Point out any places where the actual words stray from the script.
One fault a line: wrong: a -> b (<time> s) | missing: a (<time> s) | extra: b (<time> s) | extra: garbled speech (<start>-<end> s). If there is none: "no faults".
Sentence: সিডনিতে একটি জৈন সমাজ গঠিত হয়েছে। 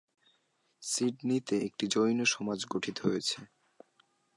no faults